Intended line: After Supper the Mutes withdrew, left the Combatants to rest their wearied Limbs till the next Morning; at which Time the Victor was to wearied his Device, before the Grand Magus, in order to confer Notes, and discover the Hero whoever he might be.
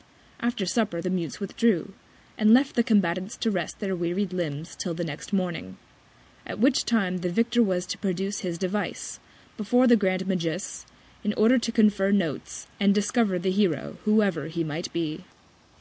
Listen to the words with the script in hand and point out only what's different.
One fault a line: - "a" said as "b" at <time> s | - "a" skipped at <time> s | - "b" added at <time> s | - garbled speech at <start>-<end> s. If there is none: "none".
- "and" added at 2.4 s
- "wearied" said as "produce" at 8.0 s